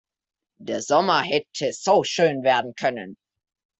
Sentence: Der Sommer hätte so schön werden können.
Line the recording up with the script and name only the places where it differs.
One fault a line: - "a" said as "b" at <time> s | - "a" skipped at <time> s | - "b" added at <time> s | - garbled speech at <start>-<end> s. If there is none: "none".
none